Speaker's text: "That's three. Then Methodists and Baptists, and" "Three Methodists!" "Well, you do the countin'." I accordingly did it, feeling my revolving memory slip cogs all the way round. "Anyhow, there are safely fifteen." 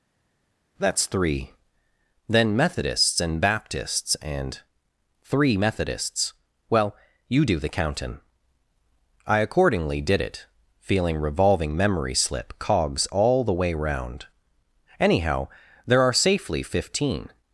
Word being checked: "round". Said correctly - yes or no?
yes